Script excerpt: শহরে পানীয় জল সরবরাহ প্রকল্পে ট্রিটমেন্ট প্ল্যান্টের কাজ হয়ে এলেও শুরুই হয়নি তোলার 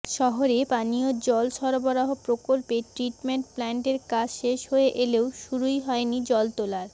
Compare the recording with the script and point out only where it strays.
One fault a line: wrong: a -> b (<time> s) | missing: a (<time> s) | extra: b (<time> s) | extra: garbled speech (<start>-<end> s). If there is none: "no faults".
extra: শেষ (4.4 s)
extra: জল (6.3 s)